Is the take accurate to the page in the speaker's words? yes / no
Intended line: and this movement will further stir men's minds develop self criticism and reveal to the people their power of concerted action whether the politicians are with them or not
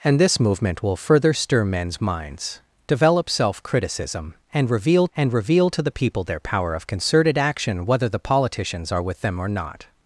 no